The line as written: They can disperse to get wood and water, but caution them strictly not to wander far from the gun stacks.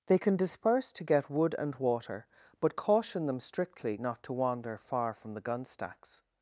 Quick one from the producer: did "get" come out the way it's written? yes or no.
yes